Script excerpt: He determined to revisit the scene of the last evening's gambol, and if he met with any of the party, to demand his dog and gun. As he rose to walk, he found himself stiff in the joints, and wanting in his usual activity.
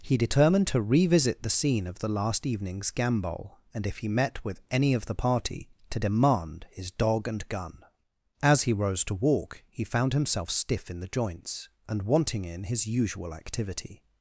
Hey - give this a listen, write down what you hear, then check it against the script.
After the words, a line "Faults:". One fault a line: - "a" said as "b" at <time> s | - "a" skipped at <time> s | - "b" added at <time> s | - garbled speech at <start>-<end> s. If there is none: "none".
He determined to revisit the scene of the last evening's gambol, and if he met with any of the party, to demand his dog and gun. As he rose to walk, he found himself stiff in the joints, and wanting in his usual activity.
Faults:
none